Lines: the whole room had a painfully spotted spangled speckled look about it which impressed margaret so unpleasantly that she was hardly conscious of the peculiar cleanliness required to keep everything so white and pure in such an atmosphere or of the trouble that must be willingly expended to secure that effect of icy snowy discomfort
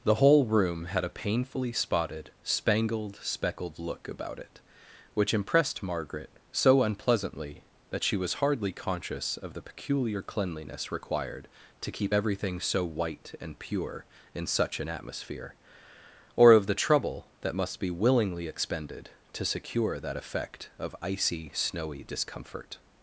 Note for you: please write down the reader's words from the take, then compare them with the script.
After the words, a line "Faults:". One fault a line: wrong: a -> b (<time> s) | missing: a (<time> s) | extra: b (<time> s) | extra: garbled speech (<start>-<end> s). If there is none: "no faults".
the whole room had a painfully spotted spangled speckled look about it which impressed margaret so unpleasantly that she was hardly conscious of the peculiar cleanliness required to keep everything so white and pure in such an atmosphere or of the trouble that must be willingly expended to secure that effect of icy snowy discomfort
Faults:
no faults